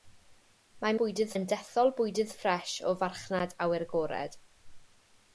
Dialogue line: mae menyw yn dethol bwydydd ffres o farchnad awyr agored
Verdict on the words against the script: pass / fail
fail